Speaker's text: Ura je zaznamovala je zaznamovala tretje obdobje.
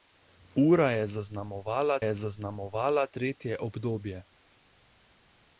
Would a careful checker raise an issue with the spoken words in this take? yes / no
no